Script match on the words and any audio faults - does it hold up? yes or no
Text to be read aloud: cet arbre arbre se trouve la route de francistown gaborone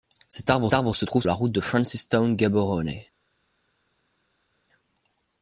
yes